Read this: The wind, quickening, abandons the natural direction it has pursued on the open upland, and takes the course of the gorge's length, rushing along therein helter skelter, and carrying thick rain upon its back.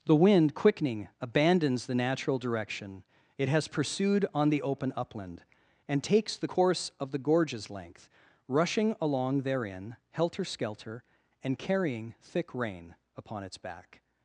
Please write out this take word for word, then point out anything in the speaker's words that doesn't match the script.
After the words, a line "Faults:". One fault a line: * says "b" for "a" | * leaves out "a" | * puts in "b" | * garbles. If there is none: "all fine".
The wind, quickening, abandons the natural direction it has pursued on the open upland, and takes the course of the gorge's length, rushing along therein helter skelter, and carrying thick rain upon its back.
Faults:
all fine